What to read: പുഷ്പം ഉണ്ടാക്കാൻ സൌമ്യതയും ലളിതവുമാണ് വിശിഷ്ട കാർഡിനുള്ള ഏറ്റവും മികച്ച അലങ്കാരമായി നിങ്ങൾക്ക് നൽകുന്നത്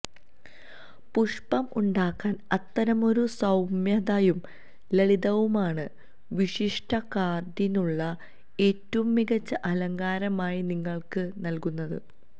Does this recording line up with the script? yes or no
no